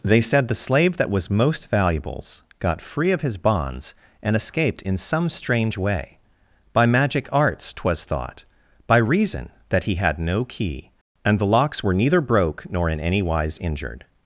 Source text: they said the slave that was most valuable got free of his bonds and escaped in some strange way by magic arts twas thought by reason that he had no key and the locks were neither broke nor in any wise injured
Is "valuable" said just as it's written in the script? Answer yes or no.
no